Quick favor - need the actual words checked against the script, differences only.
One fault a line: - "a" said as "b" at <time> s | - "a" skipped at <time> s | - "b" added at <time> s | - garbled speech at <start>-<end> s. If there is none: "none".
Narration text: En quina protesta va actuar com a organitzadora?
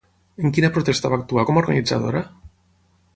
none